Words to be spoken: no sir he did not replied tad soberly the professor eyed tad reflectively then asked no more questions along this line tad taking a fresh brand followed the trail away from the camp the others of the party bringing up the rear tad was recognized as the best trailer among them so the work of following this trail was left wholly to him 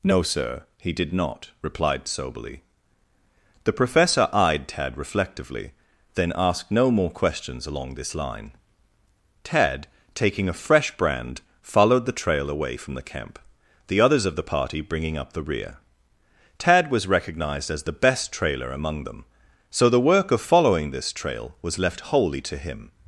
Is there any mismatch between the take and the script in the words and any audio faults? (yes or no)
yes